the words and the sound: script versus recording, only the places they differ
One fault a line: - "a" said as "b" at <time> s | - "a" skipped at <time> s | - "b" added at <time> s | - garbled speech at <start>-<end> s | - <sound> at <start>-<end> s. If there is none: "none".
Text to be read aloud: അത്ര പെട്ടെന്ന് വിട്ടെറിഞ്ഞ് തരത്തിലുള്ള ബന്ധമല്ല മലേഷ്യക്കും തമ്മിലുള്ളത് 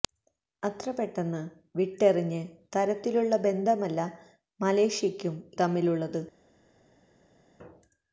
none